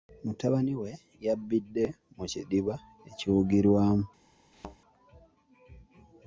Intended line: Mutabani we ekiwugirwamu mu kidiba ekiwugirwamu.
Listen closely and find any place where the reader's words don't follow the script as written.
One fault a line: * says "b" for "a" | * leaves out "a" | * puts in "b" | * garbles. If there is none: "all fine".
* says "yabbidde" for "ekiwugirwamu"